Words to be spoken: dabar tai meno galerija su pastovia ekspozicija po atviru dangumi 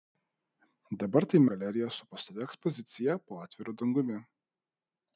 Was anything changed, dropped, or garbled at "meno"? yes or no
yes